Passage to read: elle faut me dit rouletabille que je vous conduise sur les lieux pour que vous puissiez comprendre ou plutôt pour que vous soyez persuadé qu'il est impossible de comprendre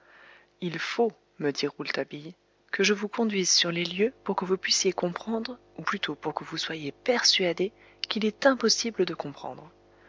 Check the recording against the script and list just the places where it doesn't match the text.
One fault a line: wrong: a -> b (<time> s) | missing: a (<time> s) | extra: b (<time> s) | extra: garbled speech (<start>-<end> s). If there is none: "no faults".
wrong: elle -> il (0.6 s)